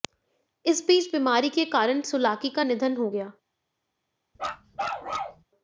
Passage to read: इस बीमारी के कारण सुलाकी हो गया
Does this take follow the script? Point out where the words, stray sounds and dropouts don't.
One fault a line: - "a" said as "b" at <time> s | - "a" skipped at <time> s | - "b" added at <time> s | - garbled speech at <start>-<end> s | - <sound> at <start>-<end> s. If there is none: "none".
- "बीच" added at 0.9 s
- "का निधन" added at 2.5 s
- bark at 4.4-5.4 s